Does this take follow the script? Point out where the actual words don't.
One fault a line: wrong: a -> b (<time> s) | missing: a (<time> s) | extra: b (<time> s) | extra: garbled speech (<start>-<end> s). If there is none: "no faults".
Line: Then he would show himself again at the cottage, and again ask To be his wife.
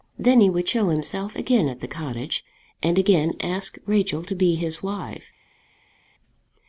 extra: Rachel (3.8 s)